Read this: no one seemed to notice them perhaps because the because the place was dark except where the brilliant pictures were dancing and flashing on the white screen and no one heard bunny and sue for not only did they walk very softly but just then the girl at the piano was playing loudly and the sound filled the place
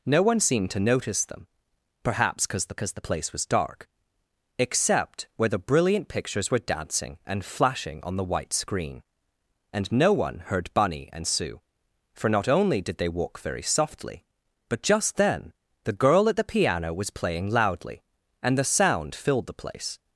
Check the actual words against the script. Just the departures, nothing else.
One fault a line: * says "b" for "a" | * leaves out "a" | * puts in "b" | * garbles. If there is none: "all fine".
all fine